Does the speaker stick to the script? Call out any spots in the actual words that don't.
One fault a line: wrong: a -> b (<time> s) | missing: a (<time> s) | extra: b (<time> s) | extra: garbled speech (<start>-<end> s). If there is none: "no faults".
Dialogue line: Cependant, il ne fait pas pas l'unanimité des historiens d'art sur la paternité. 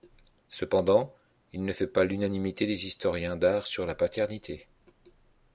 missing: pas (2.0 s)